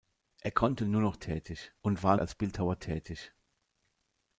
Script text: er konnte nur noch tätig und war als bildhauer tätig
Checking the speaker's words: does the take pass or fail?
pass